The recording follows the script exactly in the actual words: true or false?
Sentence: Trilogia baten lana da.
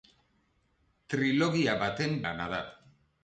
true